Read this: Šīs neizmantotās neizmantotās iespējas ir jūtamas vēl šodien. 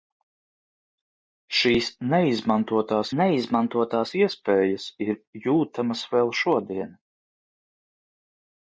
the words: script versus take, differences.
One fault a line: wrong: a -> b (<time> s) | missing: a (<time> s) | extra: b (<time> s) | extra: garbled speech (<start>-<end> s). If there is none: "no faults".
no faults